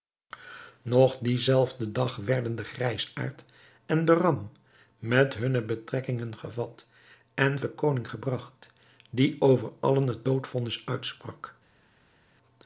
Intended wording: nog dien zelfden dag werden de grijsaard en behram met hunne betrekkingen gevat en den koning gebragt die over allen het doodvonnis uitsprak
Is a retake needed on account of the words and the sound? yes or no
no